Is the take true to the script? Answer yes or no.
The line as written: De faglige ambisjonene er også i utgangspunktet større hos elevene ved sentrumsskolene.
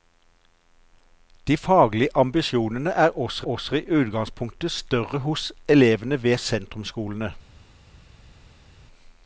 no